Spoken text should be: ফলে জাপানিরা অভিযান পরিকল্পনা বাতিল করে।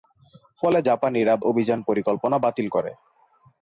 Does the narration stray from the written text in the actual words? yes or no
no